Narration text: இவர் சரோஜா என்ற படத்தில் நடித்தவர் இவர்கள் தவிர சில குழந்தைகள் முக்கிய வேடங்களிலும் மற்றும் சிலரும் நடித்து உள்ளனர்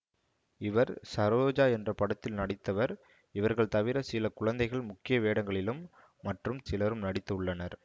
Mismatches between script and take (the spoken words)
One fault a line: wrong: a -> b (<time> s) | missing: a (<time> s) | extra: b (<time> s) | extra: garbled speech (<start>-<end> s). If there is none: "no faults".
no faults